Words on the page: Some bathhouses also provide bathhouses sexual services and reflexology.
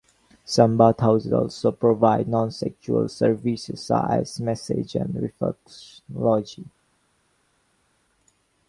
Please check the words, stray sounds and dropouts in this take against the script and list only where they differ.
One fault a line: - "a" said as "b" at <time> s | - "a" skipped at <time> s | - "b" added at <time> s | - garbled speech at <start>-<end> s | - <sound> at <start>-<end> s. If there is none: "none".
- "bathhouses" said as "non" at 2.3 s
- "such as massage" added at 3.9 s